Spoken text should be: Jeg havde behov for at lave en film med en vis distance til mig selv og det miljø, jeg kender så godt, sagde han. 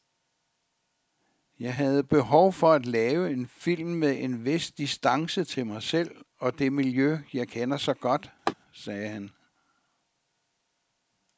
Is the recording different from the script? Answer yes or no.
no